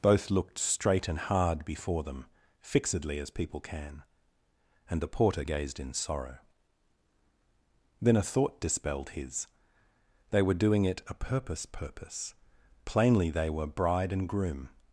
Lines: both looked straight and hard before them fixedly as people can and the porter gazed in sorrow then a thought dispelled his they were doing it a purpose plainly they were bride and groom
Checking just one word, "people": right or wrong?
right